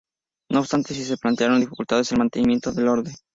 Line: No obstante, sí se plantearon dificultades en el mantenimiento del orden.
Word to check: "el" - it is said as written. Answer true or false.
true